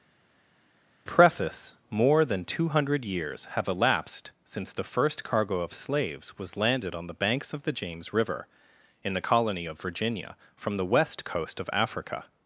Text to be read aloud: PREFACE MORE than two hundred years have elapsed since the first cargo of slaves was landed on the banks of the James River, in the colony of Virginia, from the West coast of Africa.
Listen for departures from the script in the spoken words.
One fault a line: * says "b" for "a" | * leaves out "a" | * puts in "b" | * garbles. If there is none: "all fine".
all fine